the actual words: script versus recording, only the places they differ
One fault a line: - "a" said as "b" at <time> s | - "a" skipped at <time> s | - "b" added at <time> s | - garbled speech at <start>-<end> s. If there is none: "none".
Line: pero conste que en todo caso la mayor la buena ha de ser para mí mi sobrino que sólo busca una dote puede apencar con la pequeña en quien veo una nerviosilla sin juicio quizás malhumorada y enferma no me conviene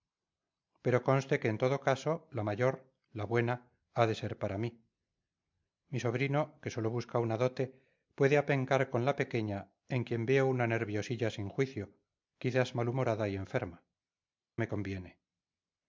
- "no" skipped at 13.8 s